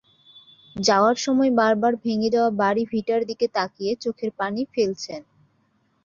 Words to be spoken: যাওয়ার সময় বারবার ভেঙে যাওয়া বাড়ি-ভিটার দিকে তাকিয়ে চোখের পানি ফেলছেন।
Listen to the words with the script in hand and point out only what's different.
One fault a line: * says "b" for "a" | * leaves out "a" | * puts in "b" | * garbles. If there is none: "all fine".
all fine